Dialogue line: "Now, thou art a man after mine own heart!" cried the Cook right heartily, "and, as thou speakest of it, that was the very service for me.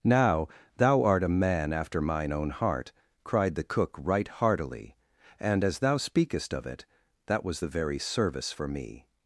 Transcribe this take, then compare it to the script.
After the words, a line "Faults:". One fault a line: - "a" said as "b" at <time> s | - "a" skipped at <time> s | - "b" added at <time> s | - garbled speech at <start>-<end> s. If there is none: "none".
"Now, thou art a man after mine own heart!" cried the Cook right heartily, "and, as thou speakest of it, that was the very service for me.
Faults:
none